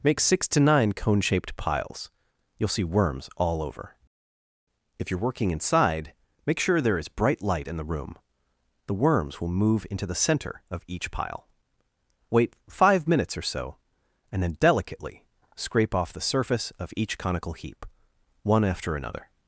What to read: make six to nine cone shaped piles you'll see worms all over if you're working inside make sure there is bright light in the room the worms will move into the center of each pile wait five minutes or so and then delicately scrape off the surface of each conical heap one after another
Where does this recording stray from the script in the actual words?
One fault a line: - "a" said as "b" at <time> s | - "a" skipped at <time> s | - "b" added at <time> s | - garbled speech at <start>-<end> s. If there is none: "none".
none